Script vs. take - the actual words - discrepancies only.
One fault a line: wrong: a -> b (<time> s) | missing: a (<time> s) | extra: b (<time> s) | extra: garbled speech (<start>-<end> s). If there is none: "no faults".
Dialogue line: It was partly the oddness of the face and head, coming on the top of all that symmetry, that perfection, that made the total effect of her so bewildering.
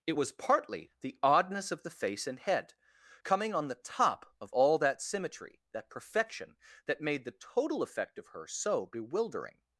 no faults